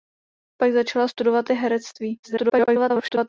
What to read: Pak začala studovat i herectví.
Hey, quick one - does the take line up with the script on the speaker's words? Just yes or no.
no